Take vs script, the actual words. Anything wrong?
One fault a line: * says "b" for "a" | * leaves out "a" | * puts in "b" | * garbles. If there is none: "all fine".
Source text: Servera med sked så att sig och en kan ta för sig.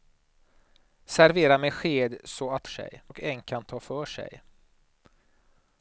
all fine